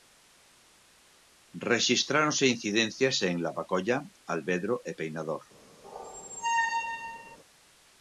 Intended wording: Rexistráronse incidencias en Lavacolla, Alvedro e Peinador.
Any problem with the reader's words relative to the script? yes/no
no